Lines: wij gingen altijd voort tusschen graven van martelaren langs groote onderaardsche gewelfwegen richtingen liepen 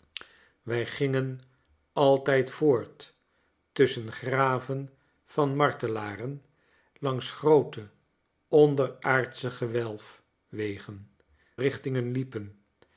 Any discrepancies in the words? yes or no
no